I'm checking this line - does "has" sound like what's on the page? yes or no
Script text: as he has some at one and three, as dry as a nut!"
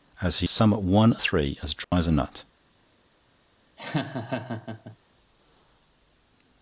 no